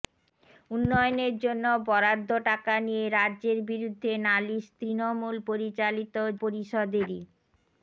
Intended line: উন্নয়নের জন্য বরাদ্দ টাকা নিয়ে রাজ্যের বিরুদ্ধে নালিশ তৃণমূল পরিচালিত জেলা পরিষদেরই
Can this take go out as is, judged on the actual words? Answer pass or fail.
fail